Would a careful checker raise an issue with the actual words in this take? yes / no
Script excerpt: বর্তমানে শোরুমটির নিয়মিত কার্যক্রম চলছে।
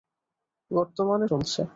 yes